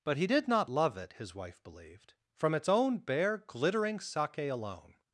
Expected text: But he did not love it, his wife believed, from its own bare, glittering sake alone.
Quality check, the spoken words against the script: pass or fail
pass